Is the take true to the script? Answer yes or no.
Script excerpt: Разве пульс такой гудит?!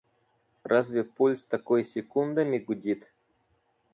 no